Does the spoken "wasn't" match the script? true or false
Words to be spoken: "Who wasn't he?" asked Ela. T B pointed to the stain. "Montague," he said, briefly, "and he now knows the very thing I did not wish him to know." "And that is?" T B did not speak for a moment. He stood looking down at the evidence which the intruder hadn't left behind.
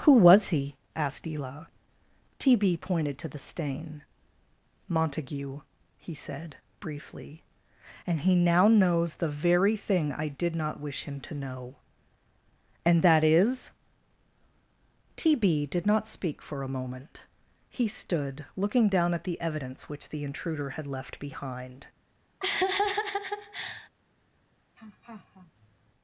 false